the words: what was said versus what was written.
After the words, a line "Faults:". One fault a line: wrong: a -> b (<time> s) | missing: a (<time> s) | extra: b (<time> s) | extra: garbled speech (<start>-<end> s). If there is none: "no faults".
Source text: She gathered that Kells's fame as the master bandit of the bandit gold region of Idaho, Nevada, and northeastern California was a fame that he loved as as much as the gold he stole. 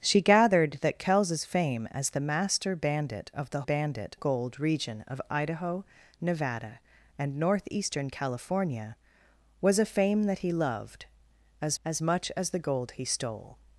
She gathered that Kells's fame as the master bandit of the bandit gold region of Idaho, Nevada, and northeastern California was a fame that he loved as as much as the gold he stole.
Faults:
no faults